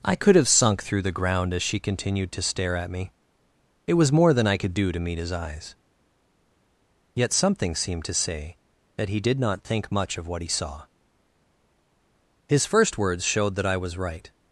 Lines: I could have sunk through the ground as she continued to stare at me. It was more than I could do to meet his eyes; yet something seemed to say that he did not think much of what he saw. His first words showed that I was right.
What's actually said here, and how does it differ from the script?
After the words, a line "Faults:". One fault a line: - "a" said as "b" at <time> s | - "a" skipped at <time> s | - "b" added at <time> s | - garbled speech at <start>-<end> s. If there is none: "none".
I could have sunk through the ground as she continued to stare at me. It was more than I could do to meet his eyes; yet something seemed to say that he did not think much of what he saw. His first words showed that I was right.
Faults:
none